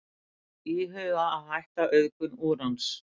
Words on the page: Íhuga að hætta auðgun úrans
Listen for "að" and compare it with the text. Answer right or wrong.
right